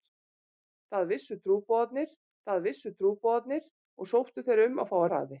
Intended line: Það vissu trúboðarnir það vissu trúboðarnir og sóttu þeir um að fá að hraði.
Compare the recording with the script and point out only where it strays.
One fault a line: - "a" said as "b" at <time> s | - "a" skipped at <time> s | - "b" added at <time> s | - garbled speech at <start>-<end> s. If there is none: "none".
none